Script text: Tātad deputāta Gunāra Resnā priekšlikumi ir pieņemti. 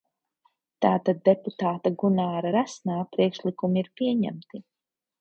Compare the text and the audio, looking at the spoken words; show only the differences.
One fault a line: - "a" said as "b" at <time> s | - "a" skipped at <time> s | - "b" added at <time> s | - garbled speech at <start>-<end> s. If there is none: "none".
none